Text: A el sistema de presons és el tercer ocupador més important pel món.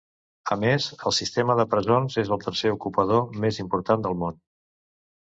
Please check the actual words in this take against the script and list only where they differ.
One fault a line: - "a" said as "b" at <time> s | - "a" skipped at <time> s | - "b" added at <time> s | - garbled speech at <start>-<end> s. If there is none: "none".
- "més" added at 0.6 s
- "pel" said as "del" at 4.1 s